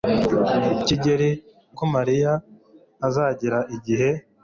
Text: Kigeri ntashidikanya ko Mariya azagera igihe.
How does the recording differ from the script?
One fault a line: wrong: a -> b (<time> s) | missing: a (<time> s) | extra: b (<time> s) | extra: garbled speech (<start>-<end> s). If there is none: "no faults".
missing: ntashidikanya (1.3 s)